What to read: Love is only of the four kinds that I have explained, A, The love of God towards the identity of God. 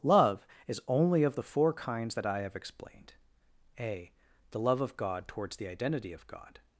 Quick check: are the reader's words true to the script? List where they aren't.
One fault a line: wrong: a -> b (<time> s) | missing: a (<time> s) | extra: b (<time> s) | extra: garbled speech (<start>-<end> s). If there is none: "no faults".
no faults